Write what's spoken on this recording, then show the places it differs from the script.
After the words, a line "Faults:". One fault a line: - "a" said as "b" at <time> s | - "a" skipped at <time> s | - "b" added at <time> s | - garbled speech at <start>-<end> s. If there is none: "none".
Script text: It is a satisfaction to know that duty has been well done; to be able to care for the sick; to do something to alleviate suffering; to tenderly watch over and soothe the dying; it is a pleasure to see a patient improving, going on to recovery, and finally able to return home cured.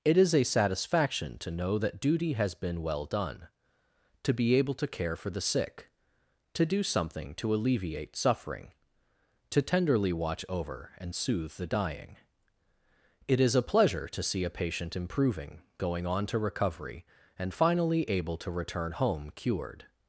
It is a satisfaction to know that duty has been well done; to be able to care for the sick; to do something to alleviate suffering; to tenderly watch over and soothe the dying; it is a pleasure to see a patient improving, going on to recovery, and finally able to return home cured.
Faults:
none